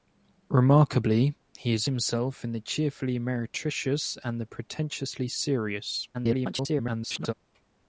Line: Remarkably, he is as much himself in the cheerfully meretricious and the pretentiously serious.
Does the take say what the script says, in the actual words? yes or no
no